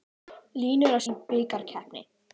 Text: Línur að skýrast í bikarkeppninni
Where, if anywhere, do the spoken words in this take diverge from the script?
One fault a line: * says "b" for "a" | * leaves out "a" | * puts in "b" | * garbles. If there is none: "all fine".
* leaves out "skýrast"